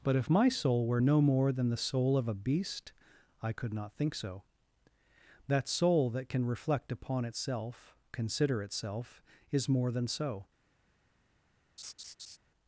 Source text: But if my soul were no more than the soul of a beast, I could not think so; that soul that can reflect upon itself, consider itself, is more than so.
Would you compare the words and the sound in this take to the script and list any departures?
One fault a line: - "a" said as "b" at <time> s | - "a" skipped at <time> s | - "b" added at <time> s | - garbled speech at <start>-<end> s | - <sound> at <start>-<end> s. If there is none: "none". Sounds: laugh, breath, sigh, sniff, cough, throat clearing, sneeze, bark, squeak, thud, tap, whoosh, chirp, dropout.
- laugh at 11.8-12.4 s